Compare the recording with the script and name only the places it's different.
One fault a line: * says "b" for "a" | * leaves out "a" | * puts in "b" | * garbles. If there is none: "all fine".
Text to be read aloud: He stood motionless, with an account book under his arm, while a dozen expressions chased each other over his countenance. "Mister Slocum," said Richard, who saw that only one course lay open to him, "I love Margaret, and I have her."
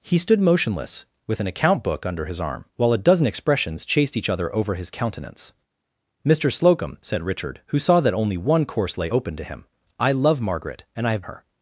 all fine